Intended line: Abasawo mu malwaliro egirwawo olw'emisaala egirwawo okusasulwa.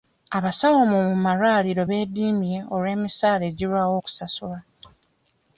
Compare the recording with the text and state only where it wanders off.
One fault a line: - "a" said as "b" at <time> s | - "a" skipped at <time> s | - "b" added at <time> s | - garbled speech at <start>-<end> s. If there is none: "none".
- "egirwawo" said as "beediimye" at 1.9 s